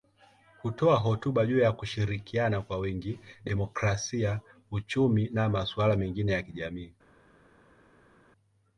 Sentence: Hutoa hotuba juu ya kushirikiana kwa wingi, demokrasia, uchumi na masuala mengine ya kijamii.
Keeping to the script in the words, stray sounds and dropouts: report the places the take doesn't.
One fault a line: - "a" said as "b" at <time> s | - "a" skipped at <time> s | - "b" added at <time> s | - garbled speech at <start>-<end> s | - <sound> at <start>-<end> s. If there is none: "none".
none